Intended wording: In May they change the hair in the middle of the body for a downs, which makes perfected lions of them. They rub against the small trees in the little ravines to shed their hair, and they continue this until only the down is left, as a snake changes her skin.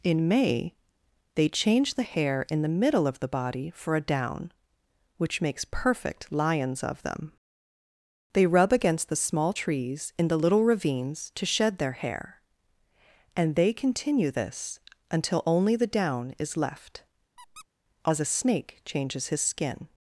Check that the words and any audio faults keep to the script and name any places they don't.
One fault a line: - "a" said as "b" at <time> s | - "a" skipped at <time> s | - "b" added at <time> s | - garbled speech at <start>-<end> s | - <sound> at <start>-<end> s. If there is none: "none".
- "downs" said as "down" at 4.0 s
- "perfected" said as "perfect" at 5.6 s
- squeak at 17.4-17.7 s
- "her" said as "his" at 19.3 s